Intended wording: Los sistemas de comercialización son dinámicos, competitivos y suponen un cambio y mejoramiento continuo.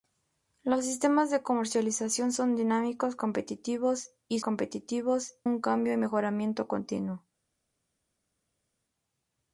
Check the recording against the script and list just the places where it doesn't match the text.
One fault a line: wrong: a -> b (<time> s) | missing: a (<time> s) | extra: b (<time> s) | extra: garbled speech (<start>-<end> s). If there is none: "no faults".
wrong: suponen -> competitivos (4.4 s)